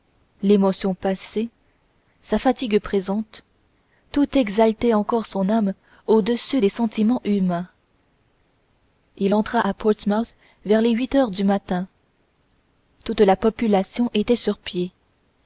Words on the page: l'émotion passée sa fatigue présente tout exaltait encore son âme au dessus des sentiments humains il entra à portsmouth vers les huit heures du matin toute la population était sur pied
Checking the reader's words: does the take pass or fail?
pass